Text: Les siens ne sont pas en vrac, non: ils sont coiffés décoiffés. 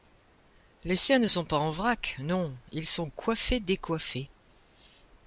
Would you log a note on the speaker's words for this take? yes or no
no